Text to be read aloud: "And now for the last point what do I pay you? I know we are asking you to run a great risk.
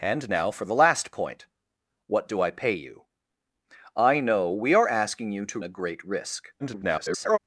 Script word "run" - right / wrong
wrong